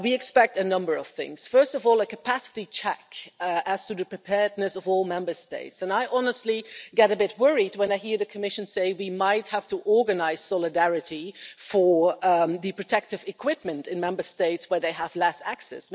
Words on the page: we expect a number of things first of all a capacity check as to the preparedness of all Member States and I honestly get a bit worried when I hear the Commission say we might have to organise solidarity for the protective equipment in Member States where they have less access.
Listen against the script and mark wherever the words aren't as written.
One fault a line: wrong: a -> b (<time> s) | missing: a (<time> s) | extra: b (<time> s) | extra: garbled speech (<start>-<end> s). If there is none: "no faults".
no faults